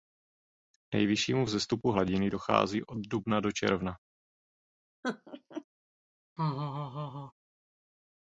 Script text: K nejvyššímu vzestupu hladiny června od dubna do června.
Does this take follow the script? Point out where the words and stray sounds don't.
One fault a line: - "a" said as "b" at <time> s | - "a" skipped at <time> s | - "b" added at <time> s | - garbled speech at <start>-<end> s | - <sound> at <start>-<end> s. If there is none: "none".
- "června" said as "dochází" at 2.3 s
- laugh at 5.0-5.6 s
- laugh at 6.4-7.3 s